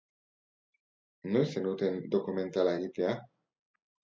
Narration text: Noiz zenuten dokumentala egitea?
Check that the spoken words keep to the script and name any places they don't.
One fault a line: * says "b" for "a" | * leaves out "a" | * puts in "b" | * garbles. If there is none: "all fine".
all fine